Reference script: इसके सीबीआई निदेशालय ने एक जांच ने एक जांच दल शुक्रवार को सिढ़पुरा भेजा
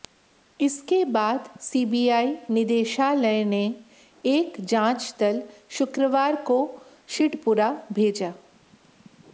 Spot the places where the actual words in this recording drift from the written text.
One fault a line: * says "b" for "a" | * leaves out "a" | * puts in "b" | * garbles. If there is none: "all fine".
* puts in "बाद"
* leaves out "ने एक जांच"